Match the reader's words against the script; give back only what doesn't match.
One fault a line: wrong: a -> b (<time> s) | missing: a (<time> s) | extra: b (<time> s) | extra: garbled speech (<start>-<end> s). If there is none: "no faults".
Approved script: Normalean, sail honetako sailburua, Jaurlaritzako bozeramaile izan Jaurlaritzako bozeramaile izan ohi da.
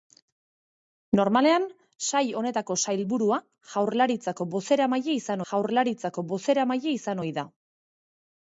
no faults